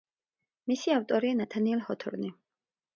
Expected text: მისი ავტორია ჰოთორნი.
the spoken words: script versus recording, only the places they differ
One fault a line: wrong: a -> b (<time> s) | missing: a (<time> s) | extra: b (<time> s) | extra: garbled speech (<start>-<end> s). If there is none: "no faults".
extra: ნათანიელ (1.4 s)